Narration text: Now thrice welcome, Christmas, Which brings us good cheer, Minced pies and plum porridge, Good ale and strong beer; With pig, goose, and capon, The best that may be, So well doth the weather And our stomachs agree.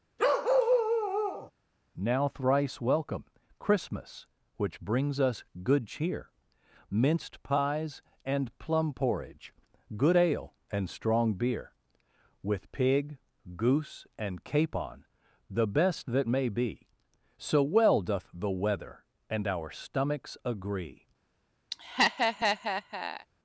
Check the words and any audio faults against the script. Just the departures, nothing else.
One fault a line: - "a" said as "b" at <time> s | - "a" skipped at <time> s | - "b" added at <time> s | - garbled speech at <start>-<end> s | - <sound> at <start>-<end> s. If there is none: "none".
- bark at 0.2-1.5 s
- laugh at 21.7-23.3 s